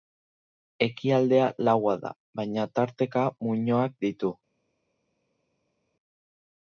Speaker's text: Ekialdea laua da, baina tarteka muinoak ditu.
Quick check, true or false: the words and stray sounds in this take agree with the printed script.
true